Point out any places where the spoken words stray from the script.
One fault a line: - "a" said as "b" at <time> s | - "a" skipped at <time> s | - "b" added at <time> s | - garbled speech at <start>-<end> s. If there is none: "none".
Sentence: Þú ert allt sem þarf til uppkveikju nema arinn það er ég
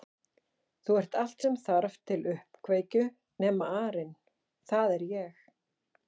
none